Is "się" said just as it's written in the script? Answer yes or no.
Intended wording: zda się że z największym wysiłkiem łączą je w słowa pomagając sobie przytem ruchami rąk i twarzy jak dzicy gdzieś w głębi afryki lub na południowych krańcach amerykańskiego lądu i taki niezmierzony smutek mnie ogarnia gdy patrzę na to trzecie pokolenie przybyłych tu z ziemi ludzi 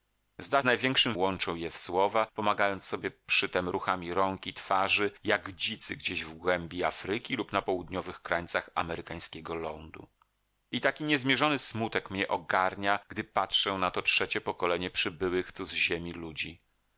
no